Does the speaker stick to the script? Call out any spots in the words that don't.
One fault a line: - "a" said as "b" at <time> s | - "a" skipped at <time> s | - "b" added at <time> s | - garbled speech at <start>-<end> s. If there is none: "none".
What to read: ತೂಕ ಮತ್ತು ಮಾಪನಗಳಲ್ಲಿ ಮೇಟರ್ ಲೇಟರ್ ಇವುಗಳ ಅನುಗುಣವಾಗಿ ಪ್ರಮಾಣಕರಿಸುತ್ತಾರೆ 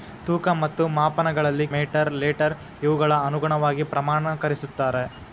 none